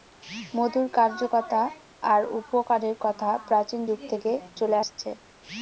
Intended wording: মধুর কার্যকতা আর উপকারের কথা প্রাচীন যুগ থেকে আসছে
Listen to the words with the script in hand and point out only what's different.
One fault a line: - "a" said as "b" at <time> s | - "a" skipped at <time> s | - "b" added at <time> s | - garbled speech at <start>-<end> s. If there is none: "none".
- "চলে" added at 4.6 s